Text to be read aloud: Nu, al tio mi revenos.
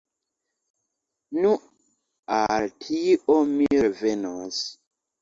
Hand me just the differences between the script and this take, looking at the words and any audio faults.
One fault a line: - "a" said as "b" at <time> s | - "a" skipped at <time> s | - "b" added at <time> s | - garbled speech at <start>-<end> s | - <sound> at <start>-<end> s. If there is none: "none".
none